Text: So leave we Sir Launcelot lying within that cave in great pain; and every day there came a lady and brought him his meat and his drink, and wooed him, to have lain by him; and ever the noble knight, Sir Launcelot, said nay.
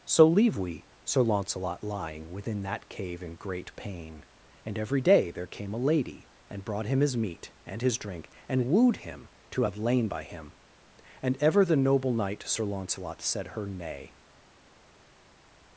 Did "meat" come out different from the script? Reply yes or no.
no